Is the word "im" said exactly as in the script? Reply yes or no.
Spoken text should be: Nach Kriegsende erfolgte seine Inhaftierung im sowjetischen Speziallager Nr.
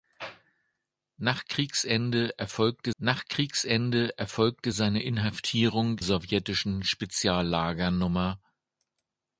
no